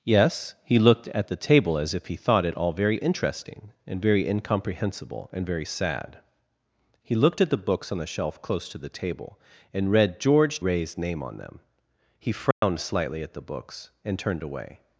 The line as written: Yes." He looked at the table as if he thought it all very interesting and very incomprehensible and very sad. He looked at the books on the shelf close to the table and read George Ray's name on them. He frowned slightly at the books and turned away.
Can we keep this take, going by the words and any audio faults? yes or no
no